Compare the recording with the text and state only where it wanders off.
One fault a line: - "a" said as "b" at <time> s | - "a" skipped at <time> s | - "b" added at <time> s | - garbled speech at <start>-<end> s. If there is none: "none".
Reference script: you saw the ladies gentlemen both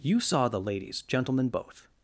none